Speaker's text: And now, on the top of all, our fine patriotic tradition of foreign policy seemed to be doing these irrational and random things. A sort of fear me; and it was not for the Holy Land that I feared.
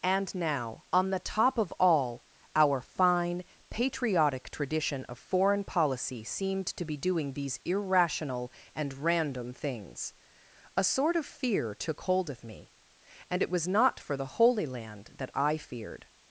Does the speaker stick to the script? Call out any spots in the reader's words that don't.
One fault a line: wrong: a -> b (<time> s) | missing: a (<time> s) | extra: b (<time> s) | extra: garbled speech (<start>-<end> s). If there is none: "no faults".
extra: took hold of (11.8 s)